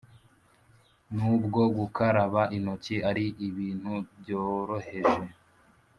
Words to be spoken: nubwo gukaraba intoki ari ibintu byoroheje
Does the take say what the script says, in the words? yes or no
yes